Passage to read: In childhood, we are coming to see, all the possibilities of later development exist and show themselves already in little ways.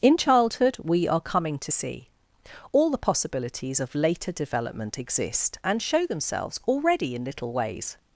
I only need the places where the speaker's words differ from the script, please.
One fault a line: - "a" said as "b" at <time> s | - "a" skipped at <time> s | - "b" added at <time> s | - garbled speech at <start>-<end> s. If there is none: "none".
none